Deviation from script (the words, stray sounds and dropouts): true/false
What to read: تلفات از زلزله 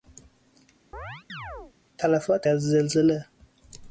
true